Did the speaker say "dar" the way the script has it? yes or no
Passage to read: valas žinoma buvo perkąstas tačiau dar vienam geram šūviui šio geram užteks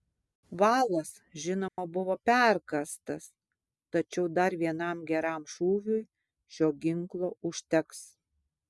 yes